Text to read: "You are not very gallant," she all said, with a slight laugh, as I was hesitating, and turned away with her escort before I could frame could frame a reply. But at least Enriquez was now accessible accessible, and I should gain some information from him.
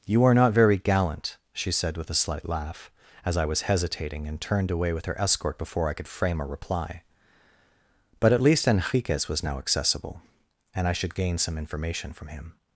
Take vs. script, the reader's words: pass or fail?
fail